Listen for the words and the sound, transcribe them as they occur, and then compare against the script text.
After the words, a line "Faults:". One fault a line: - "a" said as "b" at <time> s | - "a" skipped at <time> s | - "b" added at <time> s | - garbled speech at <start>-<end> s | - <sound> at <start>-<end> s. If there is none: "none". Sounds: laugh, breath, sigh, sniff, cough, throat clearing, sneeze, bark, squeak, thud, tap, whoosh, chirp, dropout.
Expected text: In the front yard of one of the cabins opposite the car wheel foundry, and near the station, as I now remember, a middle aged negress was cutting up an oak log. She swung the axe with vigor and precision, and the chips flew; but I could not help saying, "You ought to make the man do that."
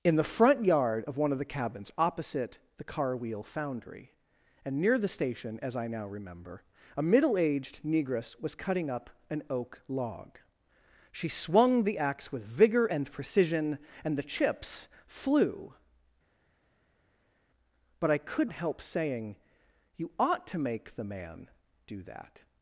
In the front yard of one of the cabins opposite the car wheel foundry, and near the station, as I now remember, a middle aged negress was cutting up an oak log. She swung the axe with vigor and precision, and the chips flew; but I could help saying, "You ought to make the man do that."
Faults:
- "not" skipped at 18.5 s